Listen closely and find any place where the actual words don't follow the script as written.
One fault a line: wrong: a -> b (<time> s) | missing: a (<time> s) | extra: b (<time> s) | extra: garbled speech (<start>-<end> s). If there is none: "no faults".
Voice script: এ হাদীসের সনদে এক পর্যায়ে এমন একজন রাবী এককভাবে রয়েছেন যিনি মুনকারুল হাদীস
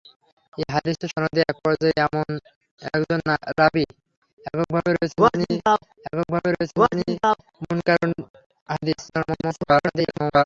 extra: এককভাবে রয়েছেন যিনি (6.0 s)
extra: garbled speech (9.1-10.4 s)